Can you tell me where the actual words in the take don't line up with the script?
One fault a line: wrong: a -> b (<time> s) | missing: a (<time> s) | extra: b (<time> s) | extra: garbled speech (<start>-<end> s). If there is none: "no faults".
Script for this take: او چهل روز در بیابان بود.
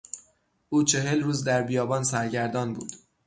extra: سرگردان (2.0 s)